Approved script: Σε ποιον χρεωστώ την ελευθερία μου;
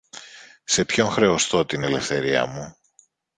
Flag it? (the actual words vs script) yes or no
no